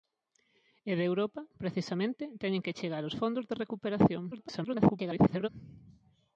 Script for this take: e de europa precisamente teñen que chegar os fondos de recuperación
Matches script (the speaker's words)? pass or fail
fail